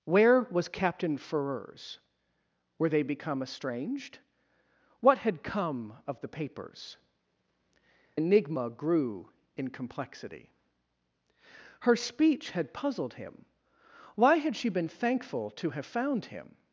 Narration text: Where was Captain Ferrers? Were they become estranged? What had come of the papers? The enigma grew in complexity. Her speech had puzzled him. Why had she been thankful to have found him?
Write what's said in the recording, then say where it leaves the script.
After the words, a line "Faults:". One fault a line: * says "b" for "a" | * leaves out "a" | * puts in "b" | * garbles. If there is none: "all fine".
Where was Captain Ferrers? Were they become estranged? What had come of the papers? Enigma grew in complexity. Her speech had puzzled him. Why had she been thankful to have found him?
Faults:
* leaves out "The"